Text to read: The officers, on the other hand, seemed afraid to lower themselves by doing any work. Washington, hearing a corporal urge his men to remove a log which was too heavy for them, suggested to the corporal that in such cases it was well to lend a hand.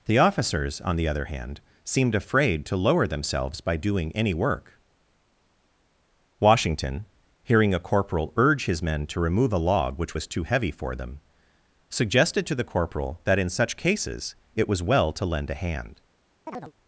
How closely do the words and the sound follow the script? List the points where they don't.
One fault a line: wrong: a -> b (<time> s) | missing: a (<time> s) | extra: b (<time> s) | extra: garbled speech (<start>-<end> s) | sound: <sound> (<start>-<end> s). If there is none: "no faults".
sound: chirp (16.5-16.7 s)